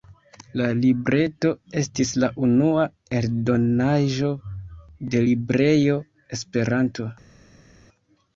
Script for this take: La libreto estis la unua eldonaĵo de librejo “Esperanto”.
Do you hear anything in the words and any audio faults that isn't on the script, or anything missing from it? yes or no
no